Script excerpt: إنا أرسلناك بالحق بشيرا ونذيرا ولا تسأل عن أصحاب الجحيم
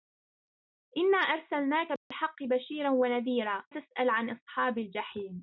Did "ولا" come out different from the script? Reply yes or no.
yes